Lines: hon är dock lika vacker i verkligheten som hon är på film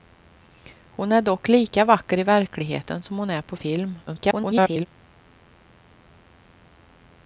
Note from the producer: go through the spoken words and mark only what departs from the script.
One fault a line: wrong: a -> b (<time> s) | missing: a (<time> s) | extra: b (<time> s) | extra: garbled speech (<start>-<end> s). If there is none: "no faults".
extra: garbled speech (4.1-4.9 s)